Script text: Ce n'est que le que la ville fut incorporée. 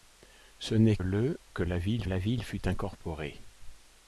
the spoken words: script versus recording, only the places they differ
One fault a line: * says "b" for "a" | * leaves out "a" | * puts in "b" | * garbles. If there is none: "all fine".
* puts in "le"
* says "la ville" for "le que"